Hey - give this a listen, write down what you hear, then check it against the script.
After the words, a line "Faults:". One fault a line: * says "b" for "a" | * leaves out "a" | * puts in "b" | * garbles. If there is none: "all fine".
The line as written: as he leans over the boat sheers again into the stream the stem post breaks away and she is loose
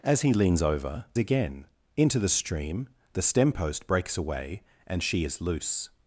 as he leans over again into the stream the stem post breaks away and she is loose
Faults:
* leaves out "the boat sheers"